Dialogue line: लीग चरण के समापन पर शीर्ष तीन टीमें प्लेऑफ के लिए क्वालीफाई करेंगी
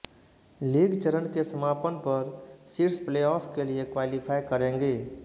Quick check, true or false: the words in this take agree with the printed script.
false